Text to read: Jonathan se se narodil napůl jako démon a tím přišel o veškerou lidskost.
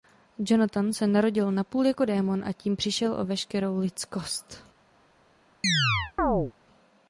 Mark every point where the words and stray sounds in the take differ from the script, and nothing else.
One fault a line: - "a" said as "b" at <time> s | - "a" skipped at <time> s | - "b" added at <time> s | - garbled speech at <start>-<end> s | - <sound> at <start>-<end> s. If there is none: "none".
- "se" skipped at 1.1 s
- chirp at 5.6-6.5 s